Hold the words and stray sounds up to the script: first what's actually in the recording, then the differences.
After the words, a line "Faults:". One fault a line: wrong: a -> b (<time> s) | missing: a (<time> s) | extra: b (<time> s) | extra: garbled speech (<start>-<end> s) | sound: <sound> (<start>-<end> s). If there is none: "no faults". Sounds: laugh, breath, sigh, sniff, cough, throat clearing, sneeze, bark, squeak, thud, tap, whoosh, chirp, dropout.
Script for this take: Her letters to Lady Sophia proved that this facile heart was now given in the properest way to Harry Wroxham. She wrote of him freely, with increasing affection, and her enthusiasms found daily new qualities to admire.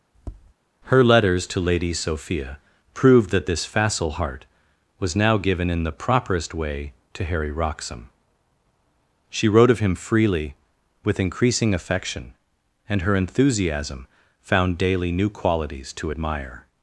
Her letters to Lady Sophia proved that this facile heart was now given in the properest way to Harry Wroxham. She wrote of him freely, with increasing affection, and her enthusiasm found daily new qualities to admire.
Faults:
sound: tap (0.1-0.5 s)
wrong: enthusiasms -> enthusiasm (13.1 s)